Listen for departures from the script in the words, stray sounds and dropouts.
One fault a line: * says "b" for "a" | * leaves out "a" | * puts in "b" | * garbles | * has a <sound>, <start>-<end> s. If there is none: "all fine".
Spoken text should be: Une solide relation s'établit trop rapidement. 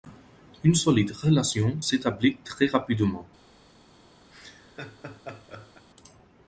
* says "très" for "trop"
* has a laugh, 4.3-5.9 s